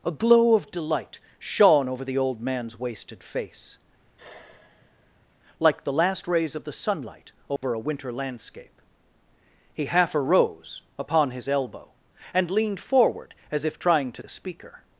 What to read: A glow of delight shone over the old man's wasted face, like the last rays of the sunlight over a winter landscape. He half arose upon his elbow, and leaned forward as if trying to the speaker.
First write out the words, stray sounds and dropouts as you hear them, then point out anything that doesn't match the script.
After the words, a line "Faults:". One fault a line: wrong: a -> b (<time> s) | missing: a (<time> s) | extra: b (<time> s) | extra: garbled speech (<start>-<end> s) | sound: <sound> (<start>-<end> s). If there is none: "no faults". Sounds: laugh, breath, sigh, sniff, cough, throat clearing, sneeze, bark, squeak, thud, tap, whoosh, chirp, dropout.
A glow of delight shone over the old man's wasted face, like the last rays of the sunlight over a winter landscape. He half arose upon his elbow, and leaned forward as if trying to the speaker.
Faults:
sound: sigh (4.0-5.3 s)
sound: dropout (7.6-7.6 s)